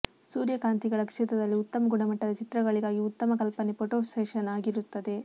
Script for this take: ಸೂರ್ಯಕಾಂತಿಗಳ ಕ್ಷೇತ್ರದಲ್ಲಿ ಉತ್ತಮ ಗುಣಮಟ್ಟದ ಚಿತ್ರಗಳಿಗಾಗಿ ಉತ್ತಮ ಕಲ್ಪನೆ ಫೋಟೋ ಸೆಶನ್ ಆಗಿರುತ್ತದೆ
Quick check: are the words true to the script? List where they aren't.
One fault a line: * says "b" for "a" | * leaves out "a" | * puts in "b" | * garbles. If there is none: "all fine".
all fine